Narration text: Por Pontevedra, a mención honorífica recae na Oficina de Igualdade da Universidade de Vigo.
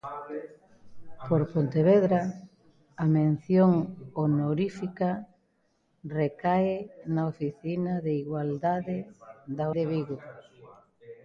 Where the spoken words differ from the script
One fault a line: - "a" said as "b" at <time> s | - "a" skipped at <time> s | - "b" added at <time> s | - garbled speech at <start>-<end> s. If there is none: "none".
- "Universidade" skipped at 9.7 s